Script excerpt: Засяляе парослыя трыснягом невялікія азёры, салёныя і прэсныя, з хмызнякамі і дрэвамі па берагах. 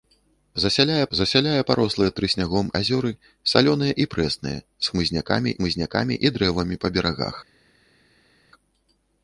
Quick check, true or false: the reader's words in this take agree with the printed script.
false